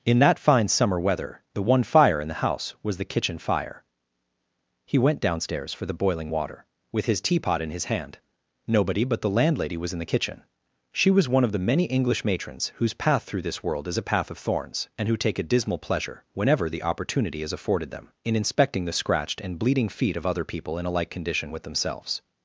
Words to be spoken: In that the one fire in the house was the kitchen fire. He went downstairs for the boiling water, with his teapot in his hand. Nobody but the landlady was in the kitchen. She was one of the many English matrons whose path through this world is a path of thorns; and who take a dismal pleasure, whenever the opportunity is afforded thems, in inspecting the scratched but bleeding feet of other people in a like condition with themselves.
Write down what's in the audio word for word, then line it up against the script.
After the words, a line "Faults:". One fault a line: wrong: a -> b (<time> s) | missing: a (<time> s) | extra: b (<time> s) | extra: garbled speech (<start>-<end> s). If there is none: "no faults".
In that fine summer weather, the one fire in the house was the kitchen fire. He went downstairs for the boiling water, with his teapot in his hand. Nobody but the landlady was in the kitchen. She was one of the many English matrons whose path through this world is a path of thorns; and who take a dismal pleasure, whenever the opportunity is afforded them, in inspecting the scratched and bleeding feet of other people in a like condition with themselves.
Faults:
extra: fine summer weather (0.4 s)
wrong: thems -> them (17.9 s)
wrong: but -> and (19.4 s)